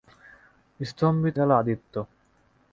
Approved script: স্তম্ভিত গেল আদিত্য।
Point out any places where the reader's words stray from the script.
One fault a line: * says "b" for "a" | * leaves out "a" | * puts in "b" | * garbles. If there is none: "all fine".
all fine